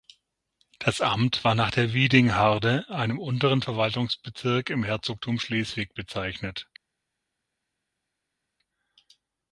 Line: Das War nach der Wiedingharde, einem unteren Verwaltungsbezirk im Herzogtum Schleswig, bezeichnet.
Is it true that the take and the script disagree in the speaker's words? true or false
true